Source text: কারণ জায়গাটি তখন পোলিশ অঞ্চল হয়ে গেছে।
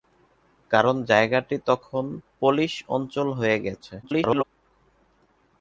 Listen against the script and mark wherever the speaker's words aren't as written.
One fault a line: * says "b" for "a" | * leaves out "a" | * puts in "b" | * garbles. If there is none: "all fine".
* garbles